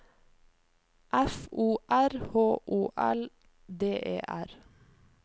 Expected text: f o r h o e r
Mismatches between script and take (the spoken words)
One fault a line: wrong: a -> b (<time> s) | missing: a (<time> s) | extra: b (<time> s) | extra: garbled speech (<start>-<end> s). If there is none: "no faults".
extra: l d (3.0 s)